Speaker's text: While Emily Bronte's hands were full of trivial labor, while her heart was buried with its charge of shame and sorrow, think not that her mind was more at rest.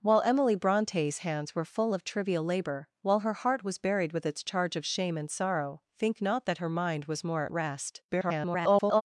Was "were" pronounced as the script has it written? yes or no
yes